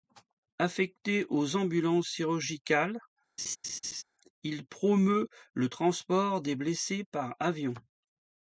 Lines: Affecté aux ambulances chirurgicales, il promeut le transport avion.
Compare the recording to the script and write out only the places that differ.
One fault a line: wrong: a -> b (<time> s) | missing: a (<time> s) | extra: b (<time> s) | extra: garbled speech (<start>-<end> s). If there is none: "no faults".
extra: des blessés par (6.4 s)